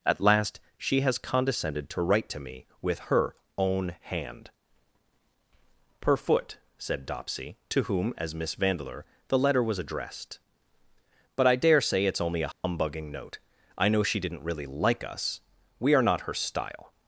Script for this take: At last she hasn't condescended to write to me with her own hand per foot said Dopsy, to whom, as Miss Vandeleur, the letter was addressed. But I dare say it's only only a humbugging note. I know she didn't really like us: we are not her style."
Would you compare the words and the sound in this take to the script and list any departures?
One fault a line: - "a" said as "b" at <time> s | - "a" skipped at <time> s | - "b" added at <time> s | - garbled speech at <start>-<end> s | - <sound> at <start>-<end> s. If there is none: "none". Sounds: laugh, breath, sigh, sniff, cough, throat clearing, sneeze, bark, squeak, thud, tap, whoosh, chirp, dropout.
- "hasn't" said as "has" at 1.0 s
- "only" skipped at 12.4 s
- dropout at 12.5-12.6 s